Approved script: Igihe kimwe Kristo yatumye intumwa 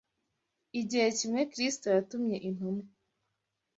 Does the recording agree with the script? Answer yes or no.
yes